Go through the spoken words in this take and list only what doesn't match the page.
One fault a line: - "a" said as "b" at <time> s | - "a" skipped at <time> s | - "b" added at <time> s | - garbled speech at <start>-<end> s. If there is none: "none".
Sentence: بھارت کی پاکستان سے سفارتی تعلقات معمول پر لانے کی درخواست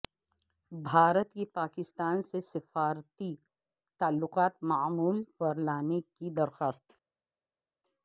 none